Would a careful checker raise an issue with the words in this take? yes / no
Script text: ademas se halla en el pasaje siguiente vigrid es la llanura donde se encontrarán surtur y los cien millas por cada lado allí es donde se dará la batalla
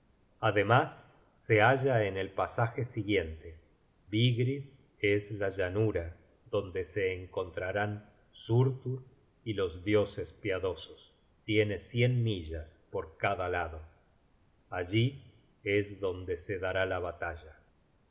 yes